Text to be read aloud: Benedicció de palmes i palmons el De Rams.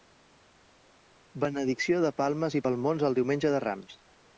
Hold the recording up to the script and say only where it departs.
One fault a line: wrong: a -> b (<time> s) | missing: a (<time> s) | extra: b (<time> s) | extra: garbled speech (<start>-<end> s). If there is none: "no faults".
extra: Diumenge (3.2 s)